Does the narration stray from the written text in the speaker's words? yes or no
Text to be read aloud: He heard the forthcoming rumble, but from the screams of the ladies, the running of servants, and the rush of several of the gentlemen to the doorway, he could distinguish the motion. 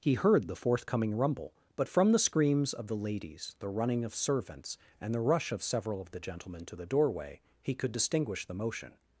no